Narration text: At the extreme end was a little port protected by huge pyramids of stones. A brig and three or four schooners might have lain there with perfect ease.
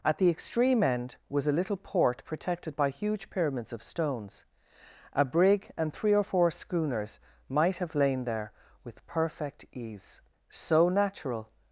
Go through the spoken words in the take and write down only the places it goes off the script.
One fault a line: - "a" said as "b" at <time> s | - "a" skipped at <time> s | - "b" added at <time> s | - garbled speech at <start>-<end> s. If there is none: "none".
- "So natural" added at 10.5 s